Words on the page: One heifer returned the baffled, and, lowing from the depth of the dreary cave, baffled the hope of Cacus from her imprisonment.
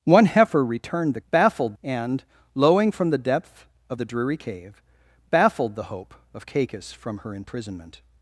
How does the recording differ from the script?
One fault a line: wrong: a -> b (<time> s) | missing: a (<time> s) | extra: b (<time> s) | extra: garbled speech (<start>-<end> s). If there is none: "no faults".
no faults